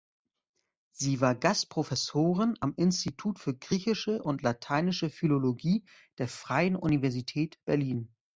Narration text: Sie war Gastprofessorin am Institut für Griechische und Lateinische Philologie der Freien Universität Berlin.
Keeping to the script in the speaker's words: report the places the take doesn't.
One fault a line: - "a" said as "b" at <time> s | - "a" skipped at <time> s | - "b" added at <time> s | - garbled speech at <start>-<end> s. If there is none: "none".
none